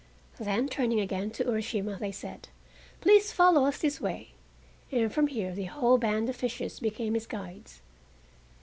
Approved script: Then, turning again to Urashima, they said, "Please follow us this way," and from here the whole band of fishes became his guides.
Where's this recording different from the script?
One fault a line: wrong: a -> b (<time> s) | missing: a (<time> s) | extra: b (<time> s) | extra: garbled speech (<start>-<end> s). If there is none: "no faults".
no faults